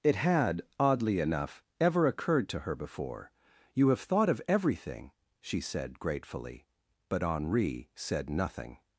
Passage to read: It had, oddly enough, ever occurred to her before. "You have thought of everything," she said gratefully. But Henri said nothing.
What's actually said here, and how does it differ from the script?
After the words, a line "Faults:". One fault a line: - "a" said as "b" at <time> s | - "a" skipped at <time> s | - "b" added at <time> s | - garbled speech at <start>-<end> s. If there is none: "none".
It had, oddly enough, ever occurred to her before. "You have thought of everything," she said gratefully. But Henri said nothing.
Faults:
none